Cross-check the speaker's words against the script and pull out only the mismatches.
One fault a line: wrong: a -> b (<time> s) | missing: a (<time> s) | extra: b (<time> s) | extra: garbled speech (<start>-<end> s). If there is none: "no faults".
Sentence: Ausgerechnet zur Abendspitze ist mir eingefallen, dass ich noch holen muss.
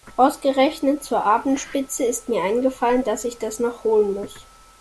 extra: das (3.4 s)